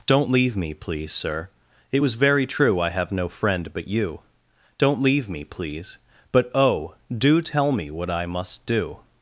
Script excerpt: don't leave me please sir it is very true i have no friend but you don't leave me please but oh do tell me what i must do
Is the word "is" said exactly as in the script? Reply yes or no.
no